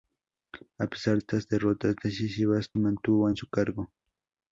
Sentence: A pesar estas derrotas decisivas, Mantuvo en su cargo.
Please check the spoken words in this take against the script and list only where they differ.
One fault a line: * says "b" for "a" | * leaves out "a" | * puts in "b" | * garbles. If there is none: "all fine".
all fine